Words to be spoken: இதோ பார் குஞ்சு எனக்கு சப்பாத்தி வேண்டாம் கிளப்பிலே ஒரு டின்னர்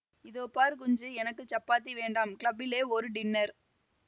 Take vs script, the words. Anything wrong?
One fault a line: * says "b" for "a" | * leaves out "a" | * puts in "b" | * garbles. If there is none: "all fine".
all fine